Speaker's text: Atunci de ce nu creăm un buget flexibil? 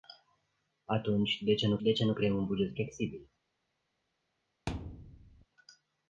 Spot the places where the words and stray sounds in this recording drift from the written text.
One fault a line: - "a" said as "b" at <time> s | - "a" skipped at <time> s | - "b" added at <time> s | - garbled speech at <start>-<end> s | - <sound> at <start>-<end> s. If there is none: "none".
- "de ce nu" added at 1.8 s
- thud at 4.7-5.5 s